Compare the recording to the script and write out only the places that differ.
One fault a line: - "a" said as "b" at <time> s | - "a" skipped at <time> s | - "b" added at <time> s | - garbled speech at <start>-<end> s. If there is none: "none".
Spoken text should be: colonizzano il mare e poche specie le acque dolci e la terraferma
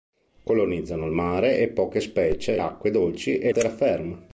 - "le" skipped at 2.6 s
- "la" skipped at 3.5 s